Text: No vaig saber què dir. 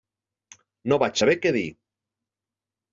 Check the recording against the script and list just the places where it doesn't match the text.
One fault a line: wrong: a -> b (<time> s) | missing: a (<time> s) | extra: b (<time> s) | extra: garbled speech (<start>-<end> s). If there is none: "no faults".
no faults